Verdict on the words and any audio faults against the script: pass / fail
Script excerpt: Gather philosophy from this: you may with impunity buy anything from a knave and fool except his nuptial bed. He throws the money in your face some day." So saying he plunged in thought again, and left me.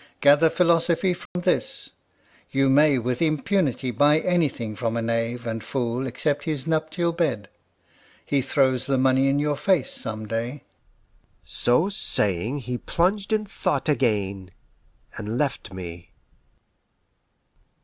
fail